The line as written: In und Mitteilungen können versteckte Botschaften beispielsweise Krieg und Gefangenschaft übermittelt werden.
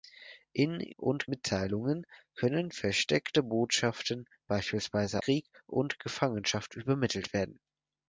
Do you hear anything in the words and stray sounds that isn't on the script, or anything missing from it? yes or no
no